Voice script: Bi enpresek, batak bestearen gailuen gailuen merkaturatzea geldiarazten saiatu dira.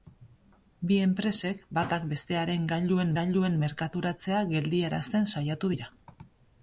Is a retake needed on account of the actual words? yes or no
no